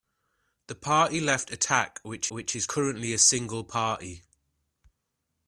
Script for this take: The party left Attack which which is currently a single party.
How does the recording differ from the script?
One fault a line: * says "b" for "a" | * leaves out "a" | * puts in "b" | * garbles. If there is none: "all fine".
all fine